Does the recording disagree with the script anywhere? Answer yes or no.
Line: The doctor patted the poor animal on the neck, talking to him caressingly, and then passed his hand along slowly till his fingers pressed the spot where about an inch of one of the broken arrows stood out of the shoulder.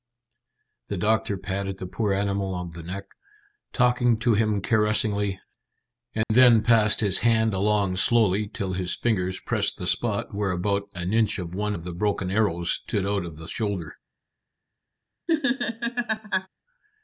no